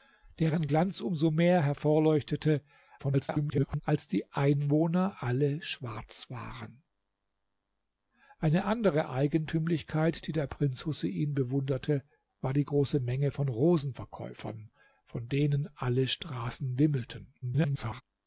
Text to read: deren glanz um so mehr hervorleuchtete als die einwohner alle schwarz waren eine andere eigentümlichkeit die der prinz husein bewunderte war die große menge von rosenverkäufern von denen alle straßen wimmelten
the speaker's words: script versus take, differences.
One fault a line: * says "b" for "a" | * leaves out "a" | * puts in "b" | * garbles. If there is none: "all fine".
* garbles
* garbles